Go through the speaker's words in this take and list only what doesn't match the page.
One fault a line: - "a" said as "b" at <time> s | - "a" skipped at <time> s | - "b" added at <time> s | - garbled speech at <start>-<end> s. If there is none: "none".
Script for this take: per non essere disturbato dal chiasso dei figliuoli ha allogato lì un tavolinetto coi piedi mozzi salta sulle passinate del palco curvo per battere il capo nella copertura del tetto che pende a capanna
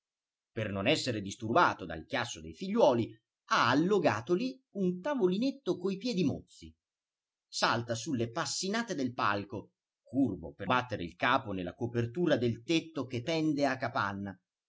none